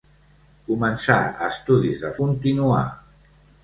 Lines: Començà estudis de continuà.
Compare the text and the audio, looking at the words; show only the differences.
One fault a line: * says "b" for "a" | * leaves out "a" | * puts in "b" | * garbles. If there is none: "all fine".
all fine